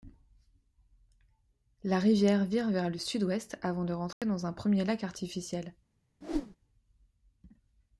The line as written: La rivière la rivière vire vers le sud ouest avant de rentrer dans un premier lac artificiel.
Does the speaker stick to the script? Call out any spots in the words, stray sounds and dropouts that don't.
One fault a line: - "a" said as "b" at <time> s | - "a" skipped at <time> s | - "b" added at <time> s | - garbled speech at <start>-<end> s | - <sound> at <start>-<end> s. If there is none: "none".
- "la rivière" skipped at 2.5 s
- dropout at 4.1-4.2 s
- whoosh at 6.2-6.6 s